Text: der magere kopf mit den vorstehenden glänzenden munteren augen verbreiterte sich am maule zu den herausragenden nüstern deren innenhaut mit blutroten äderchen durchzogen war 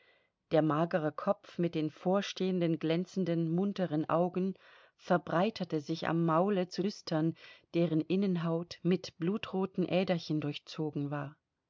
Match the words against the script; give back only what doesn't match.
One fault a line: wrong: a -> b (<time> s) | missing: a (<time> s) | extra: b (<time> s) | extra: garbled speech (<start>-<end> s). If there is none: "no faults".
missing: den herausragenden (6.8 s)